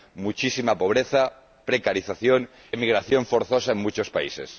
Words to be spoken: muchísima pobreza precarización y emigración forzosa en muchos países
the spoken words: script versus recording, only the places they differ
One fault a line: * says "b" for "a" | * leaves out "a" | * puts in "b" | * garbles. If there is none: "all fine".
* leaves out "y"